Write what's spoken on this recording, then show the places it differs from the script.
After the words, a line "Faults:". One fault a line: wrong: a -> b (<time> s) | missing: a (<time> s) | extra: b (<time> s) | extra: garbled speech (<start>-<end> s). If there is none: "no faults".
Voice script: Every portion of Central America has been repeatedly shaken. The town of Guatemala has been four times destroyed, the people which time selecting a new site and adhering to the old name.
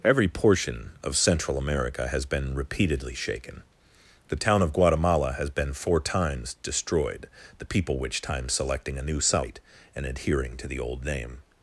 Every portion of Central America has been repeatedly shaken. The town of Guatemala has been four times destroyed, the people which time selecting a new site and adhering to the old name.
Faults:
no faults